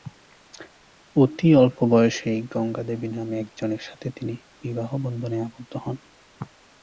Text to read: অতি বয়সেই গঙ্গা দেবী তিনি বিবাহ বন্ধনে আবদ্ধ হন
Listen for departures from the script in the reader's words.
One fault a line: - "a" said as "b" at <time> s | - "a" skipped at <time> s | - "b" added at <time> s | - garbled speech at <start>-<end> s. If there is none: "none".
- "অল্প" added at 1.6 s
- "নামে একজনের সাথে" added at 3.1 s